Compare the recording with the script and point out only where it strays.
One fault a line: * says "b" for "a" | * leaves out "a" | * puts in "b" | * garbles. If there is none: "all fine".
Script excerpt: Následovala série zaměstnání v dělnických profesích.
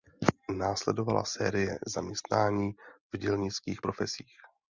all fine